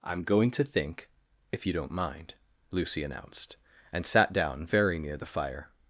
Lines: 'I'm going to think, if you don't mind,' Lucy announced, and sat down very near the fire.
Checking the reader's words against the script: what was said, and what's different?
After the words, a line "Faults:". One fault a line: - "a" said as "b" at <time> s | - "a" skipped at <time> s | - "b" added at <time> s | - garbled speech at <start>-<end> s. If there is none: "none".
'I'm going to think, if you don't mind,' Lucy announced, and sat down very near the fire.
Faults:
none